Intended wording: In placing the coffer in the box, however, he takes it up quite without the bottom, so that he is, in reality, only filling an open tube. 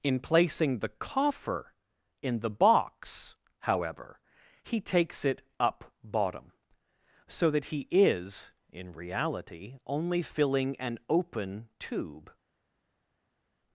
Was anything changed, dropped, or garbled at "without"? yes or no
yes